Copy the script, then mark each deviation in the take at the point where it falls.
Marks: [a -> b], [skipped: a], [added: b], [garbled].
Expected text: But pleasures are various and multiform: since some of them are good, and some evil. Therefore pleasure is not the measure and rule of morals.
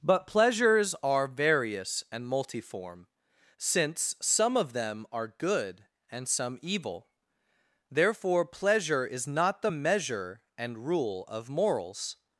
But pleasures are various and multiform: since some of them are good, and some evil. Therefore pleasure is not the measure and rule of morals.